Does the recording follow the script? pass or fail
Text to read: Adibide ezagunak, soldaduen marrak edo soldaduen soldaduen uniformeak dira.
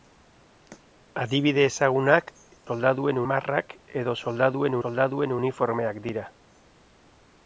pass